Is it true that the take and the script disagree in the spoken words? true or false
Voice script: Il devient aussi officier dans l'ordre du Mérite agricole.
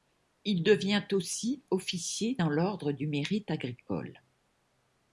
false